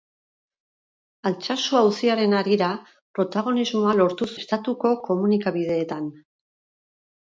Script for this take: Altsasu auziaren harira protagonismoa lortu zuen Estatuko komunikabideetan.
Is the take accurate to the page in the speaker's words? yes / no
no